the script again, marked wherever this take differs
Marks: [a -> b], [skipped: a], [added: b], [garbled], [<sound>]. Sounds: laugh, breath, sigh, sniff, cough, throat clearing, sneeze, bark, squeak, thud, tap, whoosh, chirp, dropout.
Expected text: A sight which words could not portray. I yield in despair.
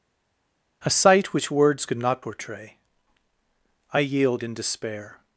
A sight which words could not portray. I yield in despair.